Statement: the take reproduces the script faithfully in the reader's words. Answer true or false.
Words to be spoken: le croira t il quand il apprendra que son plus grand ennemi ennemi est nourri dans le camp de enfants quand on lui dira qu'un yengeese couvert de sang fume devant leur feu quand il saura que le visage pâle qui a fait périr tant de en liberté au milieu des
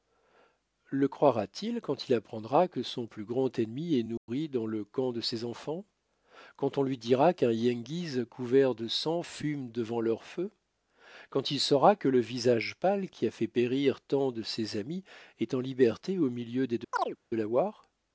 false